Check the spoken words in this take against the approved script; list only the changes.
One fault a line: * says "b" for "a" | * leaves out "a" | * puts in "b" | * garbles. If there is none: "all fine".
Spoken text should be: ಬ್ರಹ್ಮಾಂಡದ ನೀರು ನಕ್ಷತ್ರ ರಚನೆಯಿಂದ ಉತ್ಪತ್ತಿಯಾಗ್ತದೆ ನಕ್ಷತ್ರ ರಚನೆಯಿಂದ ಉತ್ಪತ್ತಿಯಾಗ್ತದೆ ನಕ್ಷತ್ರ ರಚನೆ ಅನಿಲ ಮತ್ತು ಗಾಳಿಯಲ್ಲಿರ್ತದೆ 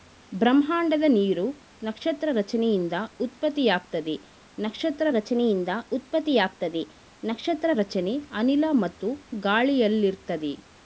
all fine